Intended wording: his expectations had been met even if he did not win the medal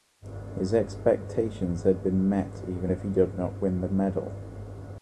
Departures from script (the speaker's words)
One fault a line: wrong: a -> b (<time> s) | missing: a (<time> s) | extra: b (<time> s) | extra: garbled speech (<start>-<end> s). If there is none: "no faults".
no faults